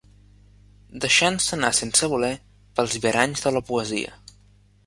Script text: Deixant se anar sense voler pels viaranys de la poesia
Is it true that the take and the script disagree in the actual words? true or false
false